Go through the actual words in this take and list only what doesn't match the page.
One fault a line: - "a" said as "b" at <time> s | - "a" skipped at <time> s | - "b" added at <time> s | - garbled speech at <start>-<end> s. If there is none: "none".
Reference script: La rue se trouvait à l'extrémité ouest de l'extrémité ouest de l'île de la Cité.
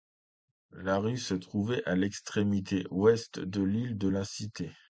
- "l'extrémité ouest de" skipped at 3.6 s